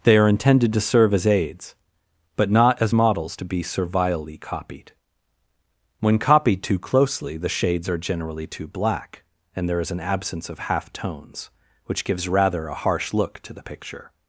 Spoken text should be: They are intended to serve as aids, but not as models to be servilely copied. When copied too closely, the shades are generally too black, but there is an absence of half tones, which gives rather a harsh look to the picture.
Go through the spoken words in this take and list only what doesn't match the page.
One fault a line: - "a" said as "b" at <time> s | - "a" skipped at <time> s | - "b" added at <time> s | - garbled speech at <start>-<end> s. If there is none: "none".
- "but" said as "and" at 9.5 s